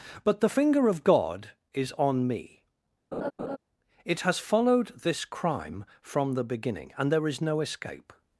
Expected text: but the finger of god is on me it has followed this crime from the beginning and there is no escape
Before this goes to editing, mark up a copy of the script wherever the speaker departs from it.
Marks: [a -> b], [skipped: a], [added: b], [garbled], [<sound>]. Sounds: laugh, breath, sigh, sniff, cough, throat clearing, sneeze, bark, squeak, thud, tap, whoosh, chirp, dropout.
but the finger of god is on me [laugh] it has followed this crime from the beginning and there is no escape